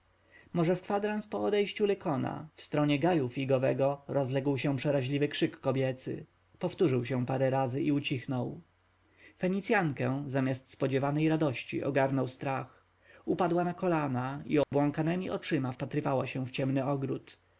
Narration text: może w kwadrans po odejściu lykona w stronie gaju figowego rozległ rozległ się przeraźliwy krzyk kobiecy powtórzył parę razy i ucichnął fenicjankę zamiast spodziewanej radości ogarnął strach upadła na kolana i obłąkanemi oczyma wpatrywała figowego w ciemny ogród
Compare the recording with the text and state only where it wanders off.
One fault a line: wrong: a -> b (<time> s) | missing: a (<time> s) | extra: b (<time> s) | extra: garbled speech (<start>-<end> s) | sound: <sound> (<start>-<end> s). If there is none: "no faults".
missing: rozległ (4.6 s)
extra: się (7.0 s)
sound: dropout (14.6-14.7 s)
wrong: figowego -> się (16.3 s)